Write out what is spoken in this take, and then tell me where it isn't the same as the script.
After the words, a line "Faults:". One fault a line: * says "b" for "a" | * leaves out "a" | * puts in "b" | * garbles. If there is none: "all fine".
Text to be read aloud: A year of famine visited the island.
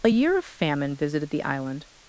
A year of famine visited the island.
Faults:
all fine